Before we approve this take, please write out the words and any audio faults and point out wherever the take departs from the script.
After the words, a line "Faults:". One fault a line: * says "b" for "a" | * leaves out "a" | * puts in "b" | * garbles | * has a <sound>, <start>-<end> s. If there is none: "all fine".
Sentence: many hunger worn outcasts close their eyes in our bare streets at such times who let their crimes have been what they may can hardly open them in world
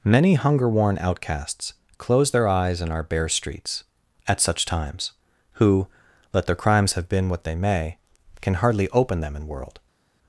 many hunger worn outcasts close their eyes in our bare streets at such times who let their crimes have been what they may can hardly open them in world
Faults:
all fine